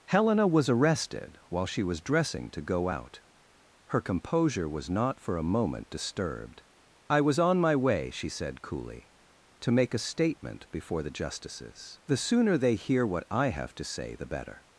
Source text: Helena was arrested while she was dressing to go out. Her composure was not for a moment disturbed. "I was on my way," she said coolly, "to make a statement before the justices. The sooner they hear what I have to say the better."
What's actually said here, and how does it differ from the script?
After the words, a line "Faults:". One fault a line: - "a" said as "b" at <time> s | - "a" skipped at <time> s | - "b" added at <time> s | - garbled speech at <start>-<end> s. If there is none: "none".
Helena was arrested while she was dressing to go out. Her composure was not for a moment disturbed. "I was on my way," she said coolly, "to make a statement before the justices. The sooner they hear what I have to say the better."
Faults:
none